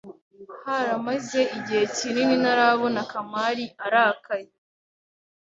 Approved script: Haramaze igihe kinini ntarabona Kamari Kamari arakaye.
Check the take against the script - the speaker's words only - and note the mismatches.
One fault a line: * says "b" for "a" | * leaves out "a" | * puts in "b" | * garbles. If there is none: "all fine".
* leaves out "Kamari"